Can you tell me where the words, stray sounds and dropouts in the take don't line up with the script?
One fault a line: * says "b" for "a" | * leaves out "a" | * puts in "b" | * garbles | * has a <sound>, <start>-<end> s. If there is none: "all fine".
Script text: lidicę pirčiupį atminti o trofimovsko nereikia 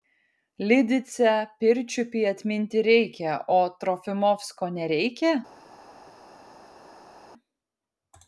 * puts in "reikia"